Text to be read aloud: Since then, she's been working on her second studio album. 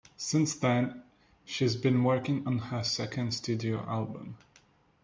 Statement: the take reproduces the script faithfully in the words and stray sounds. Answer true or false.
true